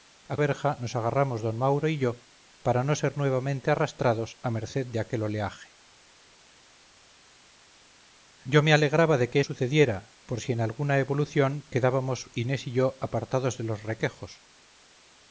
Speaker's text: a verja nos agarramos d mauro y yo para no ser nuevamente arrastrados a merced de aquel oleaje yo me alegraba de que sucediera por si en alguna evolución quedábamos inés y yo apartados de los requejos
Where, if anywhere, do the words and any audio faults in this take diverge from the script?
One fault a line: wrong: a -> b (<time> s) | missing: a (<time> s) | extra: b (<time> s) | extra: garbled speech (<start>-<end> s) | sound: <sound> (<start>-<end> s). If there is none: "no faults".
no faults